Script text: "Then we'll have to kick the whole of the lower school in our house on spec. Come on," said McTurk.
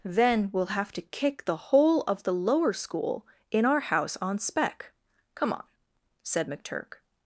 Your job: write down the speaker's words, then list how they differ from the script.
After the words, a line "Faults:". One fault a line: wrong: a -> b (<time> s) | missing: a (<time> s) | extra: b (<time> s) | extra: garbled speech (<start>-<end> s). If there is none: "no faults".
"Then we'll have to kick the whole of the lower school in our house on spec. Come on," said McTurk.
Faults:
no faults